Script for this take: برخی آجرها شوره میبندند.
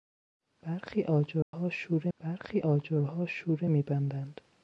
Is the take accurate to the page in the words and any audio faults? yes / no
no